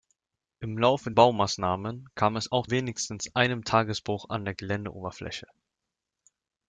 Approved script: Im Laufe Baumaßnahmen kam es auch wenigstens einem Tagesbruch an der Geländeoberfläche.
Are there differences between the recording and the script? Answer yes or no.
no